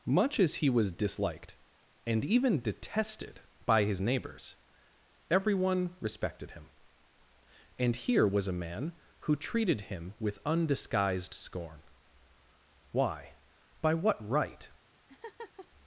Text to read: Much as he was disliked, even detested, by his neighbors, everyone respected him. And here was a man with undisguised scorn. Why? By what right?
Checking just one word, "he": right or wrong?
right